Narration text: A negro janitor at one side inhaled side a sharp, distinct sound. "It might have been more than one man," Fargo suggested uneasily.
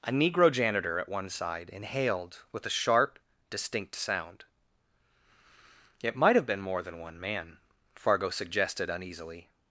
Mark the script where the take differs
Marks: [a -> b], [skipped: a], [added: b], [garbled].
A negro janitor at one side inhaled [side -> with] a sharp, distinct sound. "It might have been more than one man," Fargo suggested uneasily.